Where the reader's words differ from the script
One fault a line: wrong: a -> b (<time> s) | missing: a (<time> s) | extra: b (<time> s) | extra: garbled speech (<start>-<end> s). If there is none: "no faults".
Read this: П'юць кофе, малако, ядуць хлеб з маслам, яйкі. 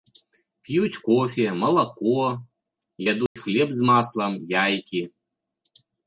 no faults